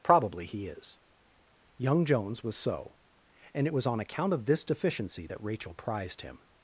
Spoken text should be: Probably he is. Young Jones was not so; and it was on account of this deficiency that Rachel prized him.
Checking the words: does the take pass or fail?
fail